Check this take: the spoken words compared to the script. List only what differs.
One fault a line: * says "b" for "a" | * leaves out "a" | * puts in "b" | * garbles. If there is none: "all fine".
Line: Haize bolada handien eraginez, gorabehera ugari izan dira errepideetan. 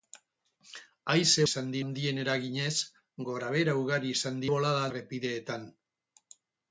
* says "izan" for "bolada"
* says "bolada" for "dira"